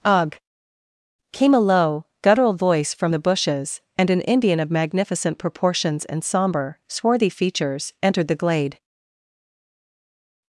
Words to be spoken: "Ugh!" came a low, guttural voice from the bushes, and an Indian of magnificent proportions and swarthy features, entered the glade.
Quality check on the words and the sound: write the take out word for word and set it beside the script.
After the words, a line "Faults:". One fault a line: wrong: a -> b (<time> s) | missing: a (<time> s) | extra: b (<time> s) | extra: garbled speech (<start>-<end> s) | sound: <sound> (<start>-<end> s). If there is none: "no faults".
"Ugh!" came a low, guttural voice from the bushes, and an Indian of magnificent proportions and somber, swarthy features, entered the glade.
Faults:
extra: somber (6.2 s)